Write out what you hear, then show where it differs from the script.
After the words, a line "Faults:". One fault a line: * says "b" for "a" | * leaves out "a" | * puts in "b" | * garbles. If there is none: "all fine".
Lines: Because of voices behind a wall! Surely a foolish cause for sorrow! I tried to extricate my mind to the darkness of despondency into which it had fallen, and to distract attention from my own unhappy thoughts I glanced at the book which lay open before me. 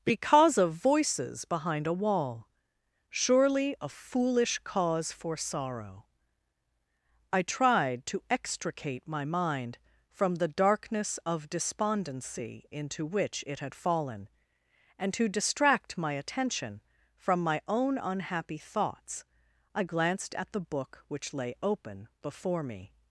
Because of voices behind a wall! Surely a foolish cause for sorrow! I tried to extricate my mind from the darkness of despondency into which it had fallen, and to distract my attention from my own unhappy thoughts I glanced at the book which lay open before me.
Faults:
* says "from" for "to"
* puts in "my"